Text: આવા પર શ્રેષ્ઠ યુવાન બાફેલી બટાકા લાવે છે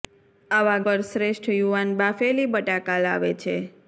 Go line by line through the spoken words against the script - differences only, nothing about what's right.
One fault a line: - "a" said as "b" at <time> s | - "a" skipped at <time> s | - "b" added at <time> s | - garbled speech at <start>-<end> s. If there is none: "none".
none